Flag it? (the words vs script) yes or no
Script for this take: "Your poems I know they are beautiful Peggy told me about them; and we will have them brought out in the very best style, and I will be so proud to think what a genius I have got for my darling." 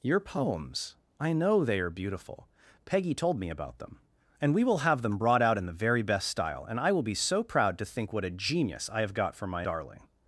no